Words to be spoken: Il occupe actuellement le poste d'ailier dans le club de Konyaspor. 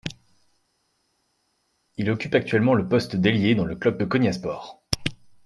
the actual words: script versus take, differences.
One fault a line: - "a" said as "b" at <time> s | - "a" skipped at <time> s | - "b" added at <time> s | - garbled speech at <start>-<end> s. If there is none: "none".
none